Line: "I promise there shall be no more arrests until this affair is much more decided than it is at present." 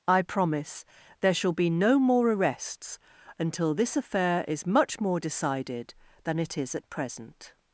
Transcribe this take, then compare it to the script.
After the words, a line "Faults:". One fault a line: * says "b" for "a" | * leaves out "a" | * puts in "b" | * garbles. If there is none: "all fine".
"I promise there shall be no more arrests until this affair is much more decided than it is at present."
Faults:
all fine